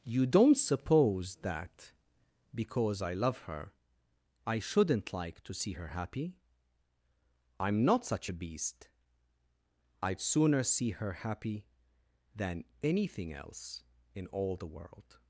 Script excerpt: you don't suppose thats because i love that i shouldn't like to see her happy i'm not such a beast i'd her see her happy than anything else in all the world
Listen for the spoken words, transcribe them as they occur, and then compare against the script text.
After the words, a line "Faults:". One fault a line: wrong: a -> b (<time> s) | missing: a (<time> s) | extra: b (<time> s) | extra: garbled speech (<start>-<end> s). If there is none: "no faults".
you don't suppose that because i love her i shouldn't like to see her happy i'm not such a beast i'd sooner see her happy than anything else in all the world
Faults:
wrong: thats -> that (1.4 s)
wrong: that -> her (3.4 s)
wrong: her -> sooner (10.2 s)